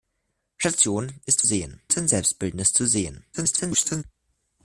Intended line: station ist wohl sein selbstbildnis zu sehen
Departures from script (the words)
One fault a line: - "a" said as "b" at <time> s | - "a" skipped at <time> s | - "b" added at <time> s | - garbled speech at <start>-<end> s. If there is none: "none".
- "wohl" said as "sehen" at 1.4 s
- garbled speech at 3.3-4.0 s